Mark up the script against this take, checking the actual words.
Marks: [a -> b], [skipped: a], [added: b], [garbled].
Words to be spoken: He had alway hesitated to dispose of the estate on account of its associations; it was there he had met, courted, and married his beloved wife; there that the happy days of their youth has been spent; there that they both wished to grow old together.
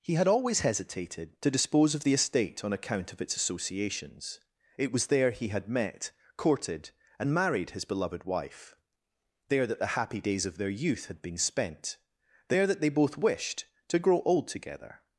He had [alway -> always] hesitated to dispose of the estate on account of its associations; it was there he had met, courted, and married his beloved wife; there that the happy days of their youth [has -> had] been spent; there that they both wished to grow old together.